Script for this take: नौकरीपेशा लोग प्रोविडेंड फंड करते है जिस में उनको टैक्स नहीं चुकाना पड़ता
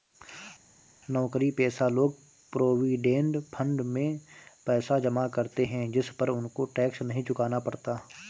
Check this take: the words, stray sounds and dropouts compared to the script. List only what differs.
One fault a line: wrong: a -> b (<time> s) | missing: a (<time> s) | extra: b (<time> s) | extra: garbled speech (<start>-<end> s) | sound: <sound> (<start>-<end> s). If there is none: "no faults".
extra: में पैसा जमा (3.9 s)
wrong: में -> पर (6.1 s)